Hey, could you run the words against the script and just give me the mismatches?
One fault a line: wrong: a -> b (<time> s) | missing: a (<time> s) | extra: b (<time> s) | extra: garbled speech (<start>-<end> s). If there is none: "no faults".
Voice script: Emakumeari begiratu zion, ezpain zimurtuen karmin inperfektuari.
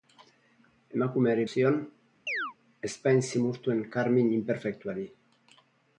missing: begiratu (1.4 s)